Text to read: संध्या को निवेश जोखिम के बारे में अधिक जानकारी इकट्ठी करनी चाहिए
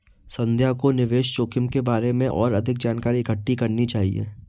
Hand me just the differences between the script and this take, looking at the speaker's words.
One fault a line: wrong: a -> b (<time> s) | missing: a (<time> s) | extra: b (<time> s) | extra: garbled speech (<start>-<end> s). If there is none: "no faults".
extra: और (2.3 s)